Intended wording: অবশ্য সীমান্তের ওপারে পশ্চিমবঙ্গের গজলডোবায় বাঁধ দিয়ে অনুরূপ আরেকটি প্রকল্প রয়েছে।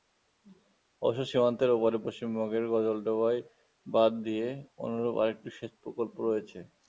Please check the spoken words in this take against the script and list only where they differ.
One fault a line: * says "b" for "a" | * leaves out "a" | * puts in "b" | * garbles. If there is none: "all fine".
* puts in "সেচ"